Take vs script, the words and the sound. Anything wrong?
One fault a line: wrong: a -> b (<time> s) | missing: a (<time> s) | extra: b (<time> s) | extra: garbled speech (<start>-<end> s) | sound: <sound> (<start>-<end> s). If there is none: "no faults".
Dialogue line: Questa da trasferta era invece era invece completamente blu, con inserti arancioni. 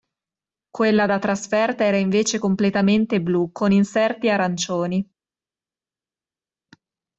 wrong: Questa -> Quella (0.7 s)
missing: era invece (2.4 s)